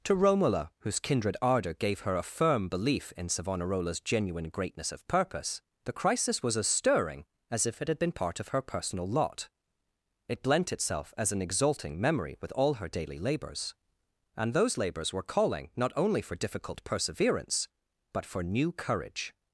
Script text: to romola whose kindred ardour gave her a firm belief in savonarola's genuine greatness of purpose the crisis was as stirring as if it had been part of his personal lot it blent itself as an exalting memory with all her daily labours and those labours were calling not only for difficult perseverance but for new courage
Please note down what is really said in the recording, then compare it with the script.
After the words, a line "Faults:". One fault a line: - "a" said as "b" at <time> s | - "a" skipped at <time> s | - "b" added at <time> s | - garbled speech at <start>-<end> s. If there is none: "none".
to romola whose kindred ardour gave her a firm belief in savonarola's genuine greatness of purpose the crisis was as stirring as if it had been part of her personal lot it blent itself as an exalting memory with all her daily labours and those labours were calling not only for difficult perseverance but for new courage
Faults:
- "his" said as "her" at 8.5 s